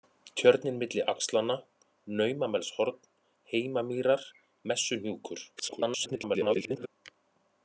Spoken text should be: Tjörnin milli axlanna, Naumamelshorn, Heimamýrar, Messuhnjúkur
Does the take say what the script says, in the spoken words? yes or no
no